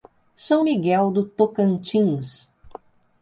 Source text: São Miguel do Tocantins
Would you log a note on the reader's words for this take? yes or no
no